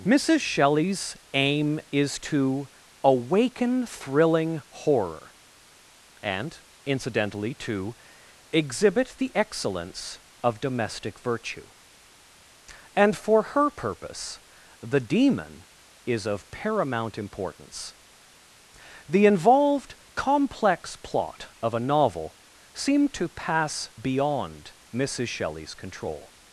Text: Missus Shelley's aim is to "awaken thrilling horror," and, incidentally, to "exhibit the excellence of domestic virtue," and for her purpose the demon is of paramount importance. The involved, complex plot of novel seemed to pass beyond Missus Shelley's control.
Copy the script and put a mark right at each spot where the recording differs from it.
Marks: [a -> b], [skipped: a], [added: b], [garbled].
Missus Shelley's aim is to "awaken thrilling horror," and, incidentally, to "exhibit the excellence of domestic virtue," and for her purpose the demon is of paramount importance. The involved, complex plot of [added: a] novel seemed to pass beyond Missus Shelley's control.